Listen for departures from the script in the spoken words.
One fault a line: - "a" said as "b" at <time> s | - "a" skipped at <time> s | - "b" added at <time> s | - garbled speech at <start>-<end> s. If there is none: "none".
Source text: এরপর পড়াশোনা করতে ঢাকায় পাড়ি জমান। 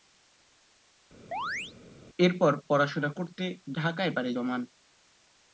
none